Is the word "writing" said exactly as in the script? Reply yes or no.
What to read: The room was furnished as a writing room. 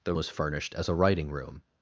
yes